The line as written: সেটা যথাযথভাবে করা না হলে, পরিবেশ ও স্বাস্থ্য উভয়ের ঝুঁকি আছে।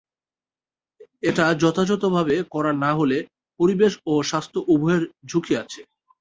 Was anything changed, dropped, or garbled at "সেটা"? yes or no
yes